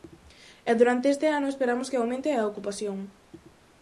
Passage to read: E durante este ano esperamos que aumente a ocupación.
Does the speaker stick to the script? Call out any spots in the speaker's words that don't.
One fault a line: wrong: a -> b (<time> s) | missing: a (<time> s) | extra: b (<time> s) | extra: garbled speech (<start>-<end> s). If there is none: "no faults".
no faults